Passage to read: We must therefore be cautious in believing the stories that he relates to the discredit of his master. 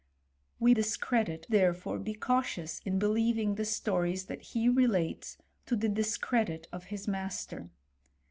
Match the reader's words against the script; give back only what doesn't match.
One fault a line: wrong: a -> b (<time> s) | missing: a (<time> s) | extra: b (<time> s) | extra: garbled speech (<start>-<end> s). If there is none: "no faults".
wrong: must -> discredit (0.7 s)